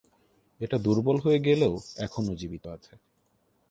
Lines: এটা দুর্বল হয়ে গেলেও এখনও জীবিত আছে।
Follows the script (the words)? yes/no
yes